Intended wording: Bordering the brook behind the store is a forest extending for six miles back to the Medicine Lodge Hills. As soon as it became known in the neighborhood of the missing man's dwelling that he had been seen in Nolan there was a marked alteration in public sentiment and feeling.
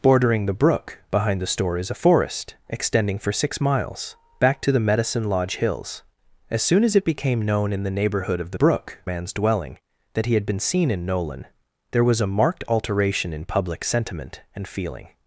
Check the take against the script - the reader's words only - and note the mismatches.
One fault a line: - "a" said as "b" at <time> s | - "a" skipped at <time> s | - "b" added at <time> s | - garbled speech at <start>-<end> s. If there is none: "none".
- "missing" said as "brook" at 8.5 s